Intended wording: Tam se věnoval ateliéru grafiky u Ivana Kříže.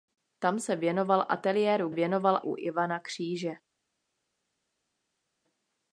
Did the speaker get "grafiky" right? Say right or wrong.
wrong